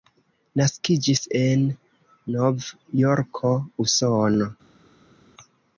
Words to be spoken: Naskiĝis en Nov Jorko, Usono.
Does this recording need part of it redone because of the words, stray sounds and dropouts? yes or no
no